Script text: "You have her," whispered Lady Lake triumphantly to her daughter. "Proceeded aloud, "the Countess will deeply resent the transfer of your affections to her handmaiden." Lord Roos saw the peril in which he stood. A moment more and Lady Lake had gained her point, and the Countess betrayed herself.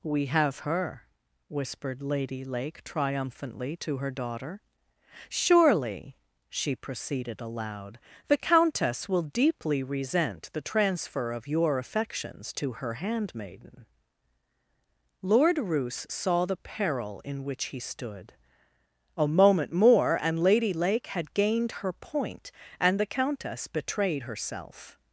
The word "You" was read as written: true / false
false